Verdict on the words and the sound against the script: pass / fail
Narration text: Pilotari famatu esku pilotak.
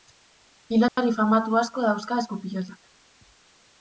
fail